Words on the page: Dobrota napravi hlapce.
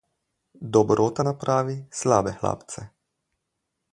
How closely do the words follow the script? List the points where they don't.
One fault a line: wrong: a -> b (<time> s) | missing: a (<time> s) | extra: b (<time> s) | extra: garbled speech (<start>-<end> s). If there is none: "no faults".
extra: slabe (1.9 s)